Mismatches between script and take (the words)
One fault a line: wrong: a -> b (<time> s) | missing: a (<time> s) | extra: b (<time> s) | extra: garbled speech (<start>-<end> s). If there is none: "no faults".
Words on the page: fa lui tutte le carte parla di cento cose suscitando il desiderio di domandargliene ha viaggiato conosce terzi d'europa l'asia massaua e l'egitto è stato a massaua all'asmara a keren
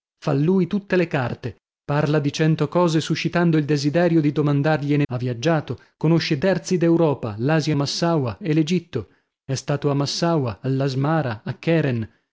no faults